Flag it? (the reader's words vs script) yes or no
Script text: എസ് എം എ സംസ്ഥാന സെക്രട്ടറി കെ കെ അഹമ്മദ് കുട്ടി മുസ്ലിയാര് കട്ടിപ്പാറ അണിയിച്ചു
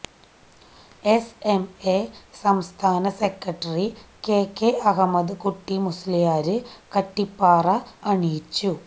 no